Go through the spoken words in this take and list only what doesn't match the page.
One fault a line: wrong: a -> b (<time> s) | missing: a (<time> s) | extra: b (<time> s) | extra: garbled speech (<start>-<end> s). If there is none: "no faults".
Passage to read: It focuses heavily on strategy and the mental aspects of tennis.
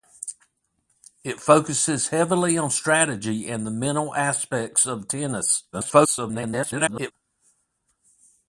extra: garbled speech (5.7-7.1 s)